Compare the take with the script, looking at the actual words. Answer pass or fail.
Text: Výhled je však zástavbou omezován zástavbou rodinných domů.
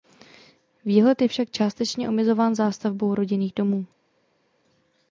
fail